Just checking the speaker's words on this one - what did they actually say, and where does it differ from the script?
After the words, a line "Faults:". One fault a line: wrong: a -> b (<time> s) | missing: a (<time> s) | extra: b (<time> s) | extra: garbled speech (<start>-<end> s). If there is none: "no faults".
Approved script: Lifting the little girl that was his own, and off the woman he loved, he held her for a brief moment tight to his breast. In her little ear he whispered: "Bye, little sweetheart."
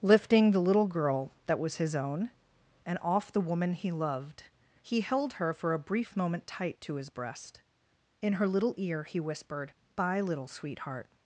Lifting the little girl that was his own, and off the woman he loved, he held her for a brief moment tight to his breast. In her little ear he whispered: "Bye, little sweetheart."
Faults:
no faults